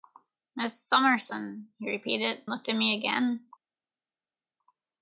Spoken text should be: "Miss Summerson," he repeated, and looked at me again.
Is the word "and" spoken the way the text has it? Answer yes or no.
no